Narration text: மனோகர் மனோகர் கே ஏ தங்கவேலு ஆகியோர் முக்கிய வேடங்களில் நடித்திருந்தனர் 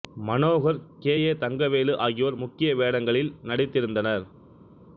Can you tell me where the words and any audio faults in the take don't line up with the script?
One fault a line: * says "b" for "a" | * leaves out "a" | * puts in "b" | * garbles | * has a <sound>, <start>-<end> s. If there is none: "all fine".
* leaves out "மனோகர்"